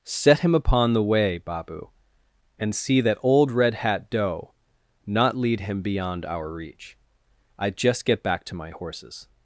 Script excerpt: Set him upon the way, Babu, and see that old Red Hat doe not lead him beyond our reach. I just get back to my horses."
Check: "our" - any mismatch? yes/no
no